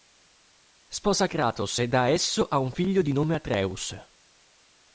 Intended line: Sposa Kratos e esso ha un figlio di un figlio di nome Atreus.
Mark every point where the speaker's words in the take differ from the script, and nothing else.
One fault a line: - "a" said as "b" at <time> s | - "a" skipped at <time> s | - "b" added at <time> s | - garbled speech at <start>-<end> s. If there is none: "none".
- "da" added at 1.9 s
- "un figlio di" skipped at 3.1 s